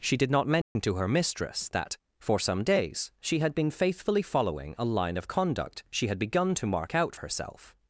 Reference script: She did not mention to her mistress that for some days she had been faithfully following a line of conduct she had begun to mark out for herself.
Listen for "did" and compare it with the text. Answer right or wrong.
right